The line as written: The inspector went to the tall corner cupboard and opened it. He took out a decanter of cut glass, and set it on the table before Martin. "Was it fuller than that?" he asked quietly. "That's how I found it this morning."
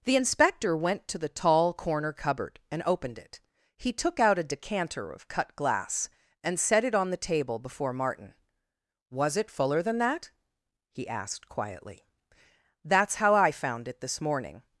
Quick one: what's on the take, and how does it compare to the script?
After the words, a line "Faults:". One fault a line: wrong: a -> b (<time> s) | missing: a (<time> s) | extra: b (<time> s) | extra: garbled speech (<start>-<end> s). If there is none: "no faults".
The inspector went to the tall corner cupboard and opened it. He took out a decanter of cut glass, and set it on the table before Martin. "Was it fuller than that?" he asked quietly. "That's how I found it this morning."
Faults:
no faults